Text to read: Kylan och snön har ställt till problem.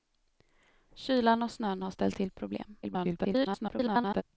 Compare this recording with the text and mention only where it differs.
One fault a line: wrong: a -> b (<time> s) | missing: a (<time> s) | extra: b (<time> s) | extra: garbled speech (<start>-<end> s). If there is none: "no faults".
extra: garbled speech (2.8-4.2 s)